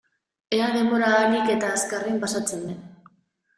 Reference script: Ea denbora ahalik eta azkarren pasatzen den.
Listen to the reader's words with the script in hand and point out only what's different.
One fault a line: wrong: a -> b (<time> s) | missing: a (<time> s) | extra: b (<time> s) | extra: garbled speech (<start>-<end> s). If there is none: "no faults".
no faults